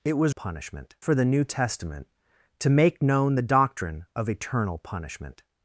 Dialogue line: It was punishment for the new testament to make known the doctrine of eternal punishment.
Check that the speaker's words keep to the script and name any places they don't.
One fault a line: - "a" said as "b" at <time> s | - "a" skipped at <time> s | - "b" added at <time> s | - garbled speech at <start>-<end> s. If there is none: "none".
none